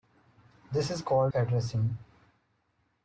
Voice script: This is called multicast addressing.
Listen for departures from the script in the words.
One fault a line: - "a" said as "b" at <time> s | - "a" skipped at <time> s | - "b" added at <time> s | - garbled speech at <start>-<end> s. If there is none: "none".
- "multicast" skipped at 1.3 s